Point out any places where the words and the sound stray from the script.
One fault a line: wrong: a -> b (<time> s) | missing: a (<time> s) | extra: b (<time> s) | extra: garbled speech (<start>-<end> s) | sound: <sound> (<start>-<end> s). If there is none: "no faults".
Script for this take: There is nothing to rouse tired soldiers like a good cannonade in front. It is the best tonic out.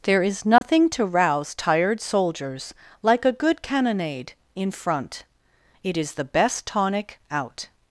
sound: dropout (0.6-0.6 s)